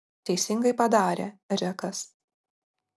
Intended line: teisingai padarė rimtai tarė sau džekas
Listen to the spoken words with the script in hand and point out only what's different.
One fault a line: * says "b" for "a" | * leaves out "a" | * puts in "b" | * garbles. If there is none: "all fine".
* leaves out "rimtai tarė sau"